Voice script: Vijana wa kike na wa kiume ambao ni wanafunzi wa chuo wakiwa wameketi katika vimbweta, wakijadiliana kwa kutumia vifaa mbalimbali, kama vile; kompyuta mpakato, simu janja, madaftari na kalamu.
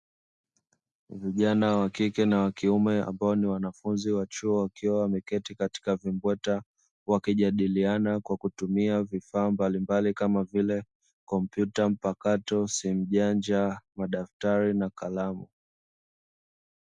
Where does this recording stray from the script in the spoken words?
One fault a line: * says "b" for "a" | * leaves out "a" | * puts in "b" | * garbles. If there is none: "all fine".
all fine